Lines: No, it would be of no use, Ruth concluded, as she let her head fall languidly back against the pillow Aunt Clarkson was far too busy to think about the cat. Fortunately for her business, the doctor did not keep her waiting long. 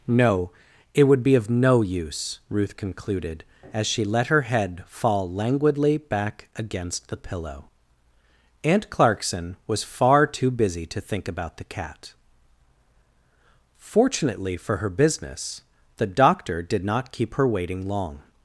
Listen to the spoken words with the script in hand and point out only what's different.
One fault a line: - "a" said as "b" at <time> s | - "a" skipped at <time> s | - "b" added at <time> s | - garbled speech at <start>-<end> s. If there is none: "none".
none